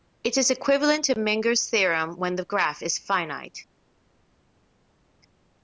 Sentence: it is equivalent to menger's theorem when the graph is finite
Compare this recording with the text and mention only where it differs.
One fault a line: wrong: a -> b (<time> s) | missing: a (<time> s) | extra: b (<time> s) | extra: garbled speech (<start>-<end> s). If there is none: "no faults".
no faults